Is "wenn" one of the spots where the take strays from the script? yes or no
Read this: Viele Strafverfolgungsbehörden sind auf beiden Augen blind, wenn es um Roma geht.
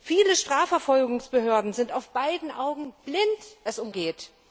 yes